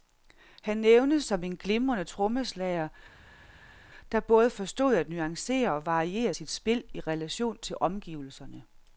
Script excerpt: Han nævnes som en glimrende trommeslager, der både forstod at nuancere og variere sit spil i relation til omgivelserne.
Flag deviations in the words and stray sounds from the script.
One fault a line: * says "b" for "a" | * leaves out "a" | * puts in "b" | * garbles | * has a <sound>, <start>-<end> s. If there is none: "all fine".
all fine